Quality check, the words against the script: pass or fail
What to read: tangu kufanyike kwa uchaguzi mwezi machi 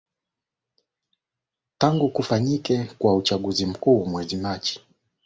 fail